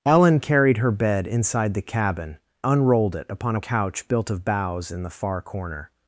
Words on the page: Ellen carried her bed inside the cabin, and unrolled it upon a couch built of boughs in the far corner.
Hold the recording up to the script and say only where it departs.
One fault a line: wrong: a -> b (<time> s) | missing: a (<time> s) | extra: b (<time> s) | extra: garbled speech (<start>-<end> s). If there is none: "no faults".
missing: and (2.4 s)